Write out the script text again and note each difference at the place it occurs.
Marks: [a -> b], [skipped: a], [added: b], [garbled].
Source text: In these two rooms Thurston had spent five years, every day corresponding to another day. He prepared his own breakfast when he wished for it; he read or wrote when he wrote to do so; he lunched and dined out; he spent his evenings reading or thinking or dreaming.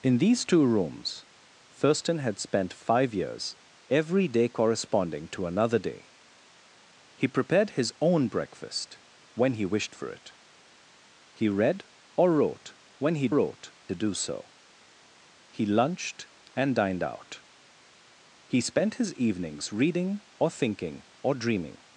In these two rooms Thurston had spent five years, every day corresponding to another day. He prepared his own breakfast when he wished for it; he read or wrote when he wrote to do so; he lunched and dined out; he spent his evenings reading or thinking or dreaming.